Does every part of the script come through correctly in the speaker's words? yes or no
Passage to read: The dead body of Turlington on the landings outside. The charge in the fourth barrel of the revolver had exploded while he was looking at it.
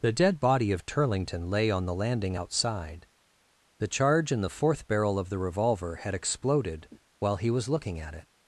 no